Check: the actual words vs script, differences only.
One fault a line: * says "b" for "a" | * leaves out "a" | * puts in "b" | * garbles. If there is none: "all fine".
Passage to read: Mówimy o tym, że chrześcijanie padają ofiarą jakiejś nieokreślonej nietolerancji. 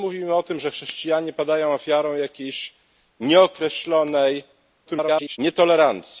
* garbles